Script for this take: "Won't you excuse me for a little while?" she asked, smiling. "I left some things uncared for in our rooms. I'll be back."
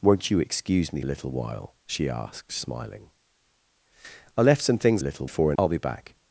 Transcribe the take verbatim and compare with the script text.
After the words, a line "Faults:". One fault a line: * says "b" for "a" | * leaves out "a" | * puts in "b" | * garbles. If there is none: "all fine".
"Won't you excuse me a little while?" she asked, smiling. "I left some things little for in. I'll be back."
Faults:
* leaves out "for"
* says "little" for "uncared"
* leaves out "our rooms"